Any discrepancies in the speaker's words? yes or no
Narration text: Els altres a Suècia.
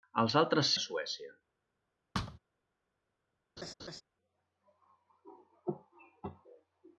no